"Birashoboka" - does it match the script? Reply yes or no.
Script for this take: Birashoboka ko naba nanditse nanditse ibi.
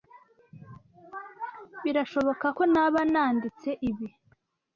yes